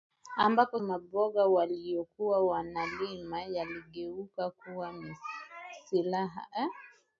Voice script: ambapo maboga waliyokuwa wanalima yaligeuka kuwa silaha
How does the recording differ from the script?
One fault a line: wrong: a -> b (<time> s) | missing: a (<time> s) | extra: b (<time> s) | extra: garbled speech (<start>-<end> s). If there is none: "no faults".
no faults